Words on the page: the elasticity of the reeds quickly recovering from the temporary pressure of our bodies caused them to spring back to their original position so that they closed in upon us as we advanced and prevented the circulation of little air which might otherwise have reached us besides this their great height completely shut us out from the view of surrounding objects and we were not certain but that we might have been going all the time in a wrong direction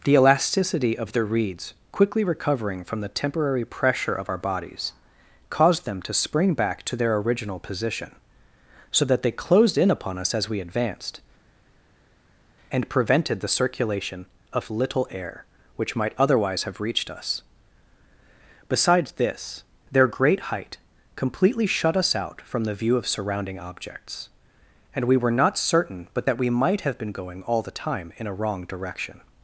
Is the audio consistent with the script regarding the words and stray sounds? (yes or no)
yes